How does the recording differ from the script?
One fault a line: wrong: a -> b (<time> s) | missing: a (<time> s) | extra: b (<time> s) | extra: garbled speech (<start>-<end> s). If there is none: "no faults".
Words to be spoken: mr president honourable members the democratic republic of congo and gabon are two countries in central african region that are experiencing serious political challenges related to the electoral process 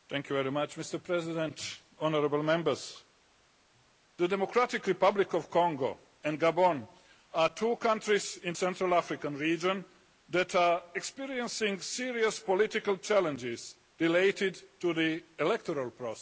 no faults